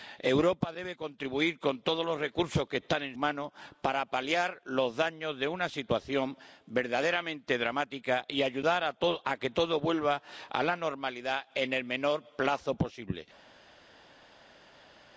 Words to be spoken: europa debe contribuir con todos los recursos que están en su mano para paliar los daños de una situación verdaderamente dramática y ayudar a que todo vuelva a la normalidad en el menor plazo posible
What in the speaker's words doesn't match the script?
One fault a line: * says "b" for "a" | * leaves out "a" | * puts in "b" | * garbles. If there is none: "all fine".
* leaves out "su"